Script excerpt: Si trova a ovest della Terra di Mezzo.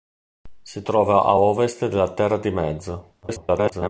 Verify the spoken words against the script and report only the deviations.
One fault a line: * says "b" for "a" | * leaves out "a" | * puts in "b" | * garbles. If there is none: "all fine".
* garbles